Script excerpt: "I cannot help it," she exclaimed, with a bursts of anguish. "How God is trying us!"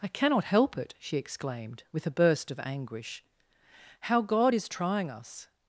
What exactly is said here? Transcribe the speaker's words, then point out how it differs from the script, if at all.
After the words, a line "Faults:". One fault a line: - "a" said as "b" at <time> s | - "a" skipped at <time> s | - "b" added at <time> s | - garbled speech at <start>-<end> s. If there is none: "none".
"I cannot help it," she exclaimed, with a burst of anguish. "How God is trying us!"
Faults:
- "bursts" said as "burst" at 2.1 s